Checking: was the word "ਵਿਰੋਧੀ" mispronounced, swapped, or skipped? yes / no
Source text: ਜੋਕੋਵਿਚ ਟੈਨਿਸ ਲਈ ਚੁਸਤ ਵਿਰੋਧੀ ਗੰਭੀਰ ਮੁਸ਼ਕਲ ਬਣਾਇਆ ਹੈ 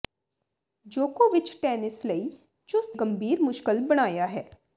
yes